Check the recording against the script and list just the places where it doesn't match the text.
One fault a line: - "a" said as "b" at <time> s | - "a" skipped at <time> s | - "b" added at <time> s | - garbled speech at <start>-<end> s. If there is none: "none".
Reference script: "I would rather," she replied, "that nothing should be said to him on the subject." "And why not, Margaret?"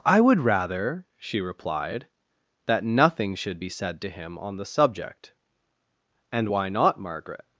none